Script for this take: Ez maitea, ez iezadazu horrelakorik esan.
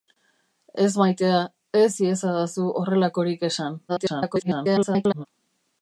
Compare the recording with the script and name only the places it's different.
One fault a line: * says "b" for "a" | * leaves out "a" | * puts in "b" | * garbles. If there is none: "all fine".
* garbles